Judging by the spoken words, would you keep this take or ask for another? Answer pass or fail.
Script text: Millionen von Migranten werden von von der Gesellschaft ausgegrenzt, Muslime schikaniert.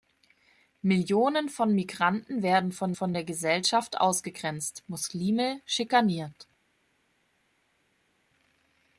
pass